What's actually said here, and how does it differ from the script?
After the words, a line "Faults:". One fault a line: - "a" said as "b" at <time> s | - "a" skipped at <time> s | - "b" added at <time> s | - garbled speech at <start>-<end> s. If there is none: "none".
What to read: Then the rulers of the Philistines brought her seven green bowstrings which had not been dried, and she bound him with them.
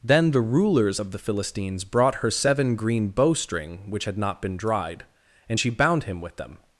Then the rulers of the Philistines brought her seven green bowstring which had not been dried, and she bound him with them.
Faults:
- "bowstrings" said as "bowstring" at 3.1 s